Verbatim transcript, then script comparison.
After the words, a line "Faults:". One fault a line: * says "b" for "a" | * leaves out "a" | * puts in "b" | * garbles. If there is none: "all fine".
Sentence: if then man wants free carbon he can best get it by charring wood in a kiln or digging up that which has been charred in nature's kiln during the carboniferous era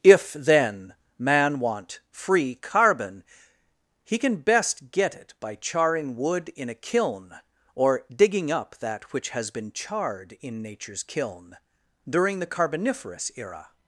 if then man want free carbon he can best get it by charring wood in a kiln or digging up that which has been charred in nature's kiln during the carboniferous era
Faults:
* says "want" for "wants"